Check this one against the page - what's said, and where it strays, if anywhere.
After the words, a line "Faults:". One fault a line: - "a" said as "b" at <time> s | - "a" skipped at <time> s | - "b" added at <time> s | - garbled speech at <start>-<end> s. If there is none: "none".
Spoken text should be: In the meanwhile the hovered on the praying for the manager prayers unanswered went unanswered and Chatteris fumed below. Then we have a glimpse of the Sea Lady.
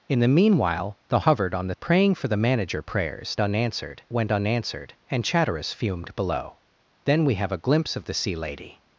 In the meanwhile the hovered on the praying for the manager prayers unanswered went unanswered and Chatteris fumed below. Then we have a glimpse of the Sea Lady.
Faults:
none